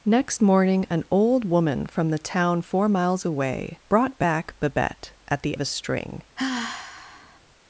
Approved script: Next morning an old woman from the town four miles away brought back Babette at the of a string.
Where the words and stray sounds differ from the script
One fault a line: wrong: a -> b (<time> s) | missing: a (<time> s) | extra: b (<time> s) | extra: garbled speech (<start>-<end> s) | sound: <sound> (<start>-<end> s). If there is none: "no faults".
sound: sigh (6.4-7.4 s)